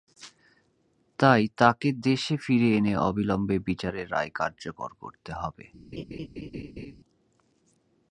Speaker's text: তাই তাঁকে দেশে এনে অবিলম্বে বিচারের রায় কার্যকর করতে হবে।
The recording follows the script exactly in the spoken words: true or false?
false